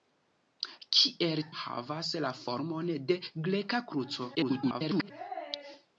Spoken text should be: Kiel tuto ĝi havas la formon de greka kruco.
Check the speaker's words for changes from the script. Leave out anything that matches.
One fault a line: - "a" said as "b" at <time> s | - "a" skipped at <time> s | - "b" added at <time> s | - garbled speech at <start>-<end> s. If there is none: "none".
- "tuto ĝi" skipped at 1.4 s
- garbled speech at 4.3-5.1 s